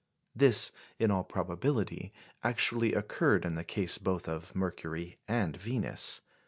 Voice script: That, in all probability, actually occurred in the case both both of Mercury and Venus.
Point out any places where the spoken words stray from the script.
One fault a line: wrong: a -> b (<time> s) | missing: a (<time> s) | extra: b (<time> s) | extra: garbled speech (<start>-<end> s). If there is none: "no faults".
wrong: That -> This (0.3 s)
missing: both (4.3 s)